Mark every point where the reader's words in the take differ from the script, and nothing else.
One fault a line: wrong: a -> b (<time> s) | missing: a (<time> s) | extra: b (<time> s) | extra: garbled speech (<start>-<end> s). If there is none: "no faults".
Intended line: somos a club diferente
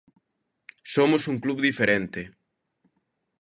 wrong: a -> un (1.3 s)